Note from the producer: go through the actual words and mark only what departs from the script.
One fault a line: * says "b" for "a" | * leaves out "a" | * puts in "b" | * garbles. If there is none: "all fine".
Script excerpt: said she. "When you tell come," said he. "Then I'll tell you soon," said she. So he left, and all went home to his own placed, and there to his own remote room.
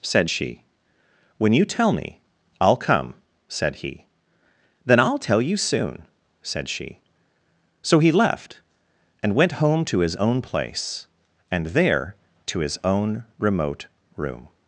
* puts in "me I'll"
* leaves out "all"
* says "place" for "placed"